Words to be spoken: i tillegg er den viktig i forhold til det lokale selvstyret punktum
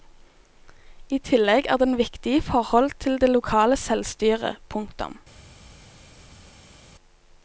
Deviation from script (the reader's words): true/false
false